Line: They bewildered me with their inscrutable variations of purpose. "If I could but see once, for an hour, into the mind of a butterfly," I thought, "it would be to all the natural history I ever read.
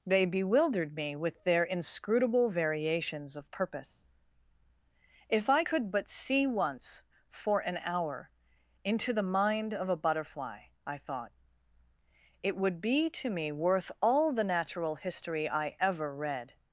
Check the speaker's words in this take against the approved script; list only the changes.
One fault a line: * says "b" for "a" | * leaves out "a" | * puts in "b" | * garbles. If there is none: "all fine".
* puts in "me worth"